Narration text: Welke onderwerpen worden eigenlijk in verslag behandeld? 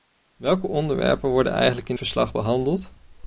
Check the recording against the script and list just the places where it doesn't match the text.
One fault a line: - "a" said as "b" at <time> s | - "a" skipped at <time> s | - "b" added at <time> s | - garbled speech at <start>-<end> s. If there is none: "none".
none